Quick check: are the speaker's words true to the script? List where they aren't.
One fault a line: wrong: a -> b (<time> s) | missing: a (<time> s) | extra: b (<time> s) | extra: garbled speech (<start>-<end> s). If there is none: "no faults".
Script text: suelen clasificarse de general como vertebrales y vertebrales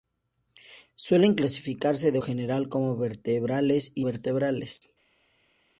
no faults